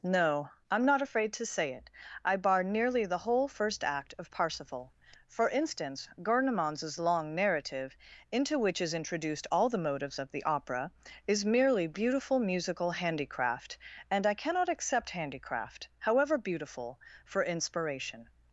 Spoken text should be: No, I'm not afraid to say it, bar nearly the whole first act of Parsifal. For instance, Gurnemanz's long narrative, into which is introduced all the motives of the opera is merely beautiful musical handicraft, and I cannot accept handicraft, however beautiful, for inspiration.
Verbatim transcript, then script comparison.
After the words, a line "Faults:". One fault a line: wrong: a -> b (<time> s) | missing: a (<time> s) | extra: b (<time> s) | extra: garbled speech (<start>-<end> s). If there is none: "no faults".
No, I'm not afraid to say it, I bar nearly the whole first act of Parsifal. For instance, Gurnemanz's long narrative, into which is introduced all the motives of the opera is merely beautiful musical handicraft, and I cannot accept handicraft, however beautiful, for inspiration.
Faults:
extra: I (2.2 s)